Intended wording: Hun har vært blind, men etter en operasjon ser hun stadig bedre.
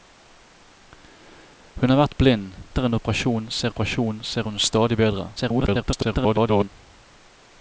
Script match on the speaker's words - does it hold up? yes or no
no